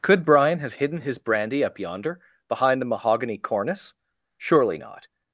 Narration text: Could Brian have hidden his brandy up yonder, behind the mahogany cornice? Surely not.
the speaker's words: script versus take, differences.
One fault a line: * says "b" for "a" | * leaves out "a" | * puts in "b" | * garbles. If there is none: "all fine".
all fine